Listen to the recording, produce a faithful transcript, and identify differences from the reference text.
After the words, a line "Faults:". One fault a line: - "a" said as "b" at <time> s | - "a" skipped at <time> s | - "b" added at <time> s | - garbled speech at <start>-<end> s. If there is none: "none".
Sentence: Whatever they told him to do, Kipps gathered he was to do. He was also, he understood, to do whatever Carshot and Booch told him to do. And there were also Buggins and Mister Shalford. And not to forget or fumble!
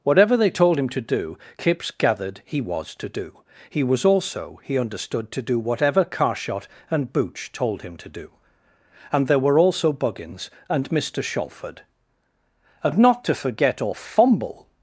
Whatever they told him to do, Kipps gathered he was to do. He was also, he understood, to do whatever Carshot and Booch told him to do. And there were also Buggins and Mister Shalford. And not to forget or fumble!
Faults:
none